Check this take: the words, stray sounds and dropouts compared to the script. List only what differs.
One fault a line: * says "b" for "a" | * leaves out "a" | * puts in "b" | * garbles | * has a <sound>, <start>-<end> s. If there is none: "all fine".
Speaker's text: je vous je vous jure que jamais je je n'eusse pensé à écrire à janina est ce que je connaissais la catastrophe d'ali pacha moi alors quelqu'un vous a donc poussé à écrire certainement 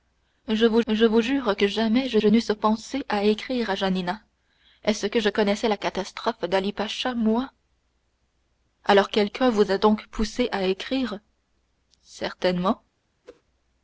* has a whoosh, 13.2-13.4 s